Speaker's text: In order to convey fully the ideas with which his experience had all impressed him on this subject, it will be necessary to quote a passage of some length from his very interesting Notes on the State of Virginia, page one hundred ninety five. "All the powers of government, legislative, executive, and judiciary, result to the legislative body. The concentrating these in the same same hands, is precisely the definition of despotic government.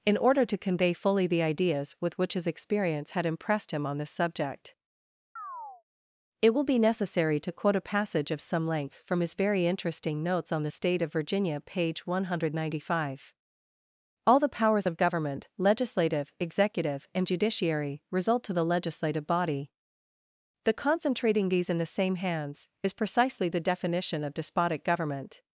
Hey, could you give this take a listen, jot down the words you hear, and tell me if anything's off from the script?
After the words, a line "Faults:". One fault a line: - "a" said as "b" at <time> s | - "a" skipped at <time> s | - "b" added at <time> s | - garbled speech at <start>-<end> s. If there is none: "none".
In order to convey fully the ideas with which his experience had impressed him on this subject, it will be necessary to quote a passage of some length from his very interesting Notes on the State of Virginia, page one hundred ninety five. "All the powers of government, legislative, executive, and judiciary, result to the legislative body. The concentrating these in the same hands, is precisely the definition of despotic government.
Faults:
- "all" skipped at 3.3 s
- "same" skipped at 22.1 s